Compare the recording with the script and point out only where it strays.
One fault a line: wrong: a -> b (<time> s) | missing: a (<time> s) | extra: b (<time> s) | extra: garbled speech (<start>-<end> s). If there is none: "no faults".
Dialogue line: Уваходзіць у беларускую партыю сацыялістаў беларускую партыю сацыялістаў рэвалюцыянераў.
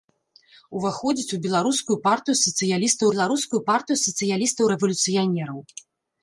no faults